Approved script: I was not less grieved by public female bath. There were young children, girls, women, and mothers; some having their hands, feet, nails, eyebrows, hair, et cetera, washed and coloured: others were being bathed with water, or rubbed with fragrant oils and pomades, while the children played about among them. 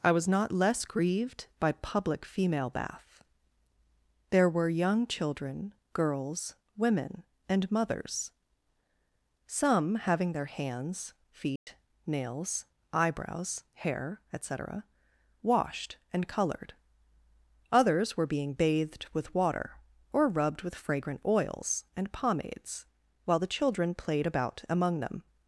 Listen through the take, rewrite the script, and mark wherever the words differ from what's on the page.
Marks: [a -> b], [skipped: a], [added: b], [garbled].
I was not less grieved by public female bath. There were young children, girls, women, and mothers; some having their hands, feet, nails, eyebrows, hair, et cetera, washed and coloured: others were being bathed with water, or rubbed with fragrant oils and pomades, while the children played about among them.